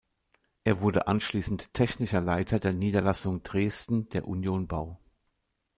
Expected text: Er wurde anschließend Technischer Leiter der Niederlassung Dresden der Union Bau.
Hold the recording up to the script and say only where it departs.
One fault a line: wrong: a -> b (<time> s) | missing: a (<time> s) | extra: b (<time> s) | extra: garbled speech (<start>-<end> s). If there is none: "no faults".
no faults